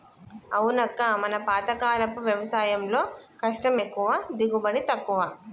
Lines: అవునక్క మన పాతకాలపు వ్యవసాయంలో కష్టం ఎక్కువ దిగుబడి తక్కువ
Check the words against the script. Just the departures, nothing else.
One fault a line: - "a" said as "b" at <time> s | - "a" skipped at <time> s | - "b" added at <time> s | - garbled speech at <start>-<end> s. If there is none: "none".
none